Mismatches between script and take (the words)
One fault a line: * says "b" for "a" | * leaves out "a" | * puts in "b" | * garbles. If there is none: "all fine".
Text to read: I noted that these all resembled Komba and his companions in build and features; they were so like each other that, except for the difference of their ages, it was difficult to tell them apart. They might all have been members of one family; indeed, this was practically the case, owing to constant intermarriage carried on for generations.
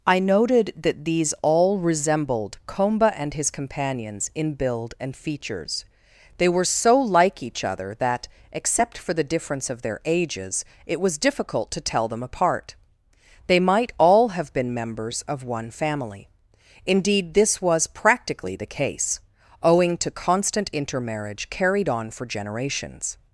all fine